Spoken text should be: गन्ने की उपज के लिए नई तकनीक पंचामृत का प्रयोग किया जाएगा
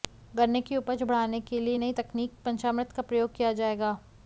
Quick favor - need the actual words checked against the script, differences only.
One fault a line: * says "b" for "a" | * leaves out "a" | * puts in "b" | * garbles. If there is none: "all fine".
* puts in "बढ़ाने"